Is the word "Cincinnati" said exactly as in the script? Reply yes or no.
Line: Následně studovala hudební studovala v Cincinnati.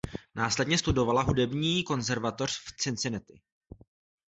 yes